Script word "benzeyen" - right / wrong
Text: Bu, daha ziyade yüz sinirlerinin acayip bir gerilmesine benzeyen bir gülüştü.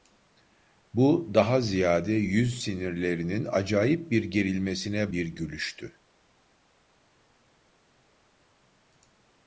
wrong